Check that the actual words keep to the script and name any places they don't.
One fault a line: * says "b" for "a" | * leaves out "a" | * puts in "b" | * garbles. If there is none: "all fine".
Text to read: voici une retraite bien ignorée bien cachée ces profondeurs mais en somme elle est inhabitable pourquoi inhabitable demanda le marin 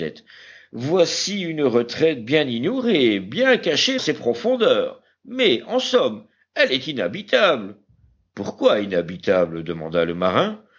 all fine